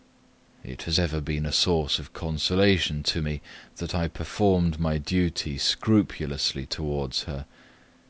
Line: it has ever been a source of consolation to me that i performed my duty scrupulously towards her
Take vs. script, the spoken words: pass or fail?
pass